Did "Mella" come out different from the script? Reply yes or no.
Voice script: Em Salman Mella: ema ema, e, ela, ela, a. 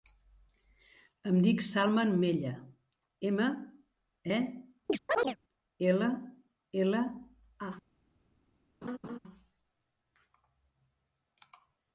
no